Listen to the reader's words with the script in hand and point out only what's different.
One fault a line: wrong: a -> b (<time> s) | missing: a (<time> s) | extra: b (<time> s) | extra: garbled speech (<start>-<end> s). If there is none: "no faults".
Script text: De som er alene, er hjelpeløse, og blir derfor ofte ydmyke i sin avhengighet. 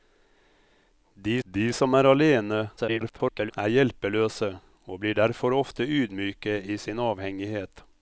extra: de (1.4 s)
extra: garbled speech (2.8-3.5 s)